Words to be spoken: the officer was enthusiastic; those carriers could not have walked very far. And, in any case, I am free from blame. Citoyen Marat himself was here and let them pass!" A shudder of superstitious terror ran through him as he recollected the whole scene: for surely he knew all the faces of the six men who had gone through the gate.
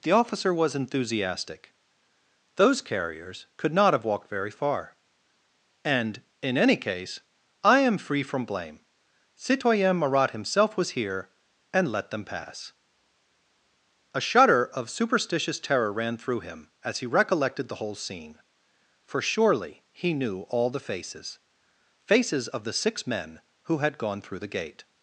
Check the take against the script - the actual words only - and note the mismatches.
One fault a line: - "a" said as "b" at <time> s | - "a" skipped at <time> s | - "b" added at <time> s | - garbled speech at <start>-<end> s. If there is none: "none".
- "faces" added at 22.1 s